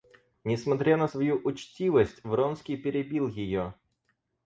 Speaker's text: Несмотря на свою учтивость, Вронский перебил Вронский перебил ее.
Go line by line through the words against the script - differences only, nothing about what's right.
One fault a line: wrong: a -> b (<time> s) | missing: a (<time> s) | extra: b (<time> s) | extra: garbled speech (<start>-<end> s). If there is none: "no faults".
missing: Вронский перебил (3.3 s)